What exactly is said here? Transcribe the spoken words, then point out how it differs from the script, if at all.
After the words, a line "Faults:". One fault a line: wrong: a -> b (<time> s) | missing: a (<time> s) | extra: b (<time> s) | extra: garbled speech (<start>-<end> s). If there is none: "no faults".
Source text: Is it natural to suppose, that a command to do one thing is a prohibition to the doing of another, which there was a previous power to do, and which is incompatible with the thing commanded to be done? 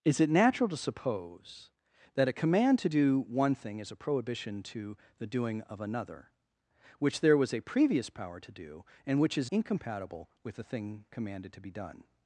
Is it natural to suppose, that a command to do one thing is a prohibition to the doing of another, which there was a previous power to do, and which is incompatible with the thing commanded to be done?
Faults:
no faults